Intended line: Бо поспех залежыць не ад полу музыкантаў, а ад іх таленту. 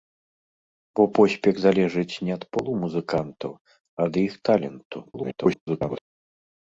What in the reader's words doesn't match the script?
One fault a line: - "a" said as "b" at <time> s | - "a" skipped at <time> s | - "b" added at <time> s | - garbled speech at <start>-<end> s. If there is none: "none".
- garbled speech at 5.0-6.0 s